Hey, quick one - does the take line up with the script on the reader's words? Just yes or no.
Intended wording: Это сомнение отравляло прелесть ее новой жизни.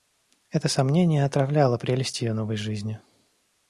yes